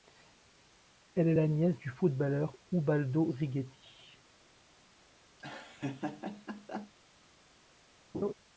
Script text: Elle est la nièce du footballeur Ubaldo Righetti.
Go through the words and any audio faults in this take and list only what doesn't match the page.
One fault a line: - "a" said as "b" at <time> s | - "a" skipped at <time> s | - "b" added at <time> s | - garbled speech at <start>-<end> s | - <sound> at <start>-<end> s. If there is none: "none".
- laugh at 5.4-6.9 s
- laugh at 8.1-8.3 s